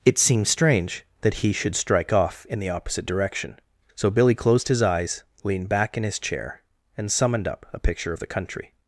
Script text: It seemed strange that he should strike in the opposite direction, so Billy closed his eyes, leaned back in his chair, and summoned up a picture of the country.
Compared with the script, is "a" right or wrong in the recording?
right